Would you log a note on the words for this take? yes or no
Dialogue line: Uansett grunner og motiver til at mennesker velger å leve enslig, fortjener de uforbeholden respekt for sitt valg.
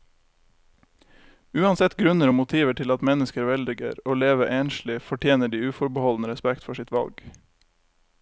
no